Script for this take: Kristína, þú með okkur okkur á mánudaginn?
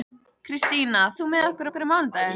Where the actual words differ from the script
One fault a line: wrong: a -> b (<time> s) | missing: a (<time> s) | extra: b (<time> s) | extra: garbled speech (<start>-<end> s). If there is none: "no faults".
no faults